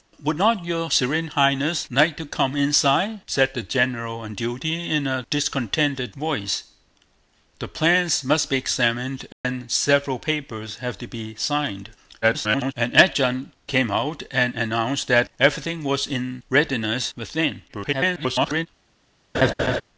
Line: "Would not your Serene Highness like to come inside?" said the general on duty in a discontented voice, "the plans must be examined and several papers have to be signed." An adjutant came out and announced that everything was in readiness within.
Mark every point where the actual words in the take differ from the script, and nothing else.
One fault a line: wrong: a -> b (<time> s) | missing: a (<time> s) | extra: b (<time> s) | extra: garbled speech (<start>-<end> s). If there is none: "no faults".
extra: garbled speech (12.2-12.7 s)
extra: garbled speech (17.7-18.7 s)